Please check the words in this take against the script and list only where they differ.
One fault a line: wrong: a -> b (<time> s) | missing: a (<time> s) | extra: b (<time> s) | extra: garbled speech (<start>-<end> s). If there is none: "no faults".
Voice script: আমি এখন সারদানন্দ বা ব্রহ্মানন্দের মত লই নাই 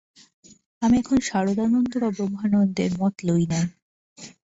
no faults